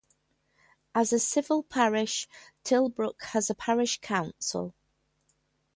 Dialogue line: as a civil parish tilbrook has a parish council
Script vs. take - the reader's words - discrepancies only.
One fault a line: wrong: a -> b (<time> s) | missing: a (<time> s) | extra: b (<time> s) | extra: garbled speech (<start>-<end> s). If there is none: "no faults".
no faults